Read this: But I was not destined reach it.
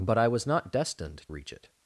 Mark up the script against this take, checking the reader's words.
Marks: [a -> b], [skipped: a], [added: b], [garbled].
But I was not destined reach it.